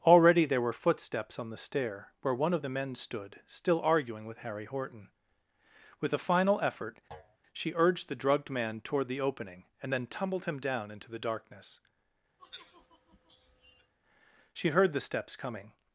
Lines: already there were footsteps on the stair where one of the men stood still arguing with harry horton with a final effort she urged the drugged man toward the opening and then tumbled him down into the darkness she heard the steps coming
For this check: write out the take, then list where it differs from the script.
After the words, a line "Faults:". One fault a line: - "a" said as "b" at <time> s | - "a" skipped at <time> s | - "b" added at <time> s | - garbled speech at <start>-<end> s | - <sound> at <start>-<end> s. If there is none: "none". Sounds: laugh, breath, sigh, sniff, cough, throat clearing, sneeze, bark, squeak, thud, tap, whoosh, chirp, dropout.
already there were footsteps on the stair where one of the men stood still arguing with harry horton with a final effort she urged the drugged man toward the opening and then tumbled him down into the darkness she heard the steps coming
Faults:
- thud at 7.1-7.4 s
- sigh at 12.4-13.9 s